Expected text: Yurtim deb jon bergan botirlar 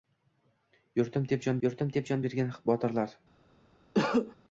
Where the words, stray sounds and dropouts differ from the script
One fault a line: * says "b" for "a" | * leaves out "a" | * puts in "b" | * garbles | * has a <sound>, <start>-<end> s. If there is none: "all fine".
* puts in "yurtim deb jon"
* has a cough, 3.9-4.4 s